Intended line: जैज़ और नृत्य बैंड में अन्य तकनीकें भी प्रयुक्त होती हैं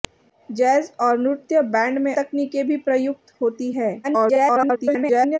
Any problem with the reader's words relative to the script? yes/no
yes